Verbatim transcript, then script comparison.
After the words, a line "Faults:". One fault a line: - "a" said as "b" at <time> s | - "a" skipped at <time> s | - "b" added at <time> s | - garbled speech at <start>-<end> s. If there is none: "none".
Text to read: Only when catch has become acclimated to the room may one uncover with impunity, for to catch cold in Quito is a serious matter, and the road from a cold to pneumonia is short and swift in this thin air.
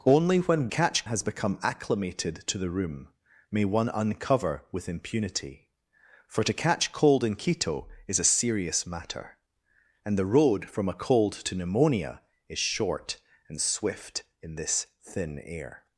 Only when catch has become acclimated to the room may one uncover with impunity, for to catch cold in Quito is a serious matter, and the road from a cold to pneumonia is short and swift in this thin air.
Faults:
none